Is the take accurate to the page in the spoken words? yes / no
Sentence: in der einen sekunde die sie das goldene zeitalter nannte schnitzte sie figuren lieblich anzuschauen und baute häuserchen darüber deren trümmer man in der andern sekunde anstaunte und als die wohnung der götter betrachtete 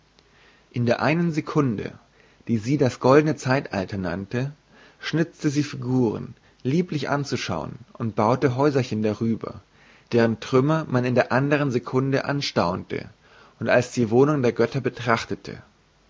yes